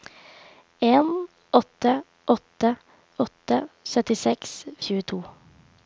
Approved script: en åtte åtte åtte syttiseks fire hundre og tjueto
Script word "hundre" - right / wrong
wrong